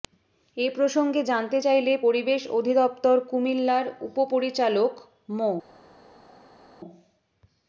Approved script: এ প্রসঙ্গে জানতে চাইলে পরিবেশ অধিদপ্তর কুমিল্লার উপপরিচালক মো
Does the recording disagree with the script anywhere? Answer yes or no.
no